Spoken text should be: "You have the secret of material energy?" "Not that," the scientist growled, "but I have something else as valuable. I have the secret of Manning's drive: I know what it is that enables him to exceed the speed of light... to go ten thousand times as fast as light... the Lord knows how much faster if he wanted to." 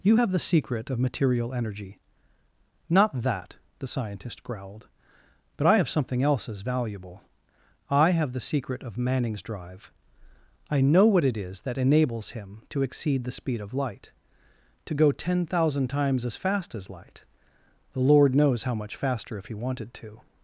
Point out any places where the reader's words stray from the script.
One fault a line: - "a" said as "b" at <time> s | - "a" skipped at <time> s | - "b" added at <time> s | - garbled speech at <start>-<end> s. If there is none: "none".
none